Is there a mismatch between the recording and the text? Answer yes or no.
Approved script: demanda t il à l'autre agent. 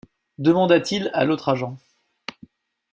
no